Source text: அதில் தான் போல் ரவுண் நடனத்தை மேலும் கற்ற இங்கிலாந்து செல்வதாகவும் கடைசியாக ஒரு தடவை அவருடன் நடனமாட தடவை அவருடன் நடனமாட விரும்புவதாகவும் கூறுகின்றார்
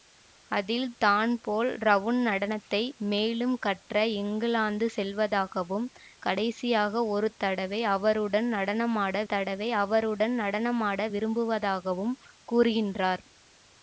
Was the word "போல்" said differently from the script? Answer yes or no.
no